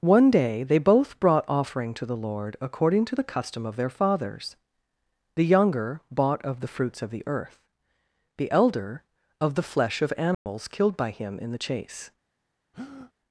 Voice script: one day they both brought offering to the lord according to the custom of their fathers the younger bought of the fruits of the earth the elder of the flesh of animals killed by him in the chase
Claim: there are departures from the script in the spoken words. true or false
false